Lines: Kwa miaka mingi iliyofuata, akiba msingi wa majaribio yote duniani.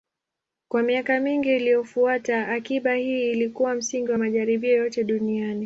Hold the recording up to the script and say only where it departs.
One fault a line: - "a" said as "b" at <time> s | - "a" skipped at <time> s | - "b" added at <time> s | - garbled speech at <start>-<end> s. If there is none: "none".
- "hii ilikuwa" added at 3.0 s